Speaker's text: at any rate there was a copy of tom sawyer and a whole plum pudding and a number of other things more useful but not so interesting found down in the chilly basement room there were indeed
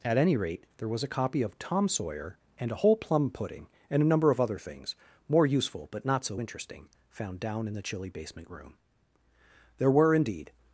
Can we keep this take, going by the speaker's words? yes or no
yes